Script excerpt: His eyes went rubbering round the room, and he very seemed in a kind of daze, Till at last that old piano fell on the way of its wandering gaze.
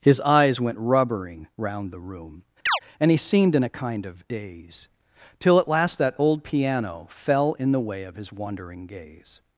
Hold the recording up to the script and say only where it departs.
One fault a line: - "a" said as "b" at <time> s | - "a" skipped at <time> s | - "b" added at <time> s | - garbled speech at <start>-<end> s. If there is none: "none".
- "very" skipped at 3.2 s
- "on" said as "in" at 7.5 s
- "its" said as "his" at 8.2 s